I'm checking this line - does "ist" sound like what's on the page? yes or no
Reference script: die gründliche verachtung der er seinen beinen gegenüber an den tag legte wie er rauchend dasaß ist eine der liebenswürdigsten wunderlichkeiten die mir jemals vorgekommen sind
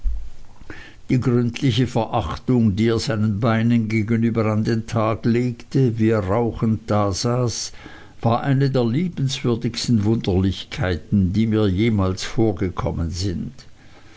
no